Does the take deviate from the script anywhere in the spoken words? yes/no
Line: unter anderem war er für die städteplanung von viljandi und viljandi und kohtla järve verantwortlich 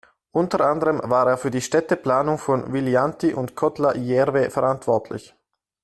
yes